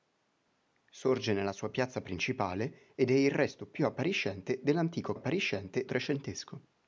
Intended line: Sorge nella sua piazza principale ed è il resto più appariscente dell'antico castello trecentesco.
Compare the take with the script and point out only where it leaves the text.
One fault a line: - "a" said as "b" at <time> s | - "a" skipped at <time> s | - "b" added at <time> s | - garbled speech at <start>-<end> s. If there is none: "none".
- "castello" said as "appariscente" at 5.1 s